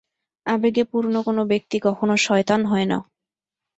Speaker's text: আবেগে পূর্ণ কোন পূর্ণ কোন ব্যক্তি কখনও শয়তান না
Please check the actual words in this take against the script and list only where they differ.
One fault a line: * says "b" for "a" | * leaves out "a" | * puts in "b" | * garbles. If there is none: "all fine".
* leaves out "পূর্ণ কোন"
* puts in "হয়"